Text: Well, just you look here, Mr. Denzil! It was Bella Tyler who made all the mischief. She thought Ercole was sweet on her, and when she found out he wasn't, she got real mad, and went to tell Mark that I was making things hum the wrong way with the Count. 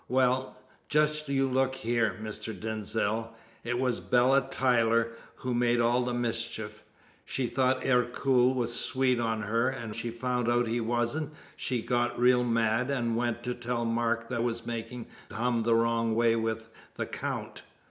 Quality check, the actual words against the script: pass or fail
fail